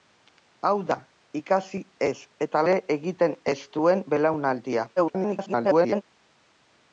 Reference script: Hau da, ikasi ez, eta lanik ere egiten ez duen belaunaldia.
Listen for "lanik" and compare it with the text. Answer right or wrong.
wrong